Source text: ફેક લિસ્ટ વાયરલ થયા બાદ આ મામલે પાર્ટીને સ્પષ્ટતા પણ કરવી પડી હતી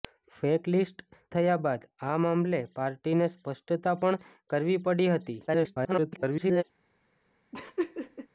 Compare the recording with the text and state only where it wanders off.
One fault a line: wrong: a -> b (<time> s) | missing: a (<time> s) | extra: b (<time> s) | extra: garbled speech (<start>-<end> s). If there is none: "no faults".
missing: વાયરલ (1.0 s)
extra: garbled speech (5.5-6.6 s)